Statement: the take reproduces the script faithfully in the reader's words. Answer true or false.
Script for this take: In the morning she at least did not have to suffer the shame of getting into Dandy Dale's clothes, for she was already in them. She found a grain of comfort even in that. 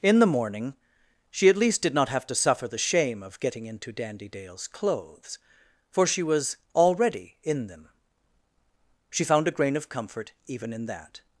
true